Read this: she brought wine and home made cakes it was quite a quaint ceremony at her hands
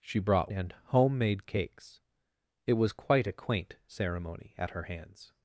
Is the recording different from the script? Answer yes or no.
yes